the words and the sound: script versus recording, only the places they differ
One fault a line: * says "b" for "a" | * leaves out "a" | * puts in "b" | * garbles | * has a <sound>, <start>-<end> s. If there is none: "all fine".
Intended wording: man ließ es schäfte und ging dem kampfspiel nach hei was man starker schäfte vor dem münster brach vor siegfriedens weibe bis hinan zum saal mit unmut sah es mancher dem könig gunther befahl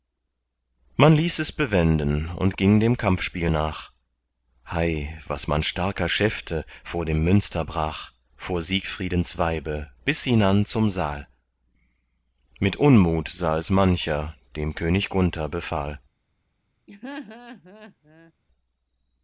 * says "bewenden" for "schäfte"
* has a laugh, 16.9-18.3 s